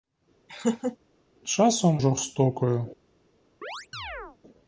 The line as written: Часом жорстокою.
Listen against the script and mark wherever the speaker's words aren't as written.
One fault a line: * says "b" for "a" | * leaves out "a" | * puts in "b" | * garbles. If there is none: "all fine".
all fine